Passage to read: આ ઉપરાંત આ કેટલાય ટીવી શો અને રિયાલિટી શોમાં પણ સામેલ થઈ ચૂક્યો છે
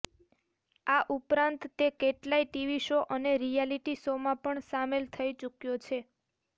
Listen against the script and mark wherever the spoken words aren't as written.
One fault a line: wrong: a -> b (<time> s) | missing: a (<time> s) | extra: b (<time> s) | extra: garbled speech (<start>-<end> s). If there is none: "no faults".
wrong: આ -> તે (1.8 s)